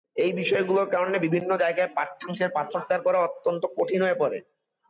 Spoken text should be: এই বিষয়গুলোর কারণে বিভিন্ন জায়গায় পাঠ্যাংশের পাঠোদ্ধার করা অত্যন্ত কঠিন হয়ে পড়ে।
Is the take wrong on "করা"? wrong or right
right